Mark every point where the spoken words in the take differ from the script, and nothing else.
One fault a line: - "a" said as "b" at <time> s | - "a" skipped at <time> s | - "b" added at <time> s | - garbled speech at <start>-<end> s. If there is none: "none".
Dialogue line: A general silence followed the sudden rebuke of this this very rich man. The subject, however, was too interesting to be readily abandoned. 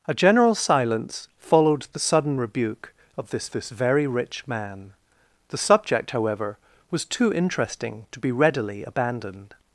none